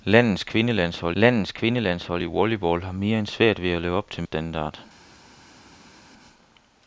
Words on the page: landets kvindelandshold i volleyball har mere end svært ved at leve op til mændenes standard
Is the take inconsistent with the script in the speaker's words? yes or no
yes